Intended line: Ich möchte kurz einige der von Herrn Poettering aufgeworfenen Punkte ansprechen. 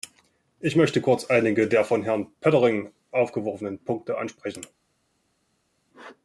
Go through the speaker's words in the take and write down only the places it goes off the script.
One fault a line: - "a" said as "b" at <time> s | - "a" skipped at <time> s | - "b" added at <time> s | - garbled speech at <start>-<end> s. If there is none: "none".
none